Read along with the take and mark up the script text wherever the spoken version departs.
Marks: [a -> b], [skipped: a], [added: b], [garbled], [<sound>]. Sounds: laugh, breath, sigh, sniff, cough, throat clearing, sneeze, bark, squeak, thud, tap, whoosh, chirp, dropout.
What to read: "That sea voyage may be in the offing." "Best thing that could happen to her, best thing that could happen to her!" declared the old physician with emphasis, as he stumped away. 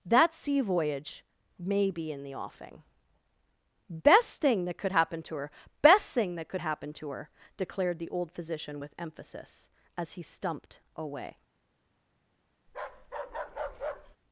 "That sea voyage may be in the offing." "Best thing that could happen to her, best thing that could happen to her!" declared the old physician with emphasis, as he stumped away. [bark]